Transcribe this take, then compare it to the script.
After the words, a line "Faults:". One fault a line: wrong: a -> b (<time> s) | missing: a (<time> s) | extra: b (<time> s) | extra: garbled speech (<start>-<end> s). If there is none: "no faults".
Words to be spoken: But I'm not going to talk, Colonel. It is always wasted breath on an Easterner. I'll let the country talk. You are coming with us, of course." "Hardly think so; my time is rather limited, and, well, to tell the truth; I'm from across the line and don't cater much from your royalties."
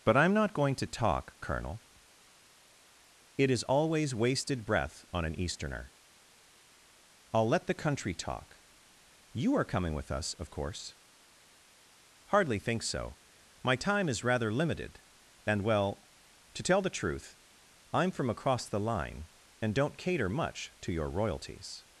But I'm not going to talk, Colonel. It is always wasted breath on an Easterner. I'll let the country talk. You are coming with us, of course." "Hardly think so; my time is rather limited, and, well, to tell the truth; I'm from across the line and don't cater much to your royalties."
Faults:
wrong: from -> to (20.8 s)